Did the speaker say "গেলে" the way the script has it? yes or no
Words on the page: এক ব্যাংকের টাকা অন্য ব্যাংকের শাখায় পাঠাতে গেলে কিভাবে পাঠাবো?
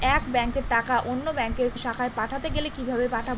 yes